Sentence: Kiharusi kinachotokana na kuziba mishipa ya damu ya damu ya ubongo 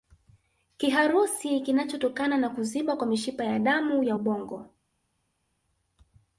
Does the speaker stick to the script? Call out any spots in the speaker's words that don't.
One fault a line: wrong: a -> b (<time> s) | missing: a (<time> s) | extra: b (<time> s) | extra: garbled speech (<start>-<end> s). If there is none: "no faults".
extra: kwa (3.0 s)
missing: damu ya (4.2 s)